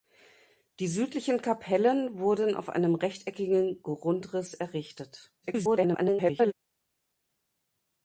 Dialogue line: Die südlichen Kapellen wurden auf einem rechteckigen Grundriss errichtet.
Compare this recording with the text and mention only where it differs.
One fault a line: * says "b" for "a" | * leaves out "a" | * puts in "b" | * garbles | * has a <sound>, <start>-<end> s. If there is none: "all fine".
* garbles